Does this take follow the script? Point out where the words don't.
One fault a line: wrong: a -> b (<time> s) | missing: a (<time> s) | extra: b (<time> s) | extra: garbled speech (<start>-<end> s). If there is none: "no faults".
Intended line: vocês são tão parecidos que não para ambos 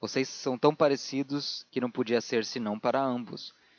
extra: podia ser senão (1.9 s)